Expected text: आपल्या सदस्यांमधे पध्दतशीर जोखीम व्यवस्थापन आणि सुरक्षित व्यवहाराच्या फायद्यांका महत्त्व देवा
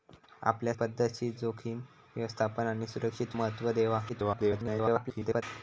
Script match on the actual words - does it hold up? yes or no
no